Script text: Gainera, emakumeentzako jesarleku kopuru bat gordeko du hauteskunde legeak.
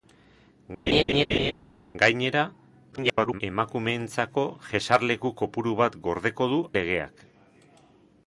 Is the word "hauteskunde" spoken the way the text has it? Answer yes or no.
no